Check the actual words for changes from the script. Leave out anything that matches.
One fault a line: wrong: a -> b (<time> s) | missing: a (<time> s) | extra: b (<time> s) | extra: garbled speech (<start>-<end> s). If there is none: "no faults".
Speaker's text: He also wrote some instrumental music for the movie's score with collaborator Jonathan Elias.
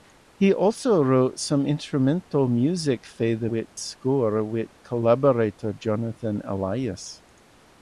wrong: movie's -> with (3.4 s)